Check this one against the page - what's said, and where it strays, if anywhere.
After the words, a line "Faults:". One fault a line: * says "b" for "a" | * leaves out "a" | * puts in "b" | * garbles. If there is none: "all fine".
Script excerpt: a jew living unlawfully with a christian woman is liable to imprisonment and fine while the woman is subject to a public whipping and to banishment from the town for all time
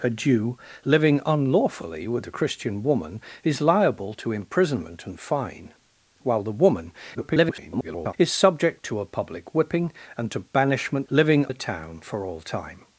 a jew living unlawfully with a christian woman is liable to imprisonment and fine while the woman [garbled] is subject to a public whipping and to banishment living the town for all time
Faults:
* garbles
* says "living" for "from"